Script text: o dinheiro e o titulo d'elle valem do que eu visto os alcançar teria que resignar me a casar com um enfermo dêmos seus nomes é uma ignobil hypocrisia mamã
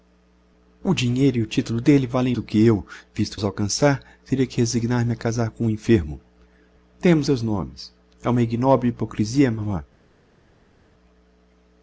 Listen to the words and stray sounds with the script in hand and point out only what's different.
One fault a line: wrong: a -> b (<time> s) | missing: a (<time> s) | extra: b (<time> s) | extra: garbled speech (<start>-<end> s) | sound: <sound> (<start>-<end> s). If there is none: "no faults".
no faults